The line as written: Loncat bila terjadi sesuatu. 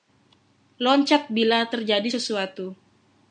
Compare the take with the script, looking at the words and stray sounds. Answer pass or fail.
pass